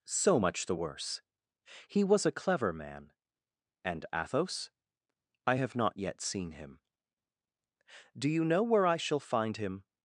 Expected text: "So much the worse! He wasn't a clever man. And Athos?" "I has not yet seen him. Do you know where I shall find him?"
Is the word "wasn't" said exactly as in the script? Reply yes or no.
no